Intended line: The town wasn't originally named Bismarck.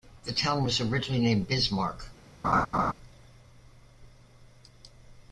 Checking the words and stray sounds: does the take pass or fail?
fail